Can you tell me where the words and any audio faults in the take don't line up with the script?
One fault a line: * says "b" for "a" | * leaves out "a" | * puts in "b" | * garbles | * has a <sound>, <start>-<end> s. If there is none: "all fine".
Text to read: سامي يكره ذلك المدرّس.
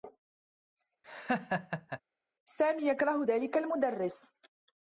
* has a laugh, 1.0-2.0 s